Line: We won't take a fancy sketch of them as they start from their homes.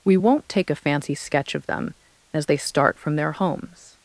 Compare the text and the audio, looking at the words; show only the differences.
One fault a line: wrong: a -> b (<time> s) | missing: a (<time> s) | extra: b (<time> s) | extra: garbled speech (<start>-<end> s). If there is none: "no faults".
no faults